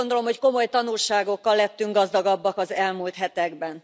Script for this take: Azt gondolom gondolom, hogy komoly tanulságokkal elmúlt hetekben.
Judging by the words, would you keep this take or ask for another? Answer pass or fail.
fail